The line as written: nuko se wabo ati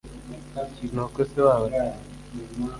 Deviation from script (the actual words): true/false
false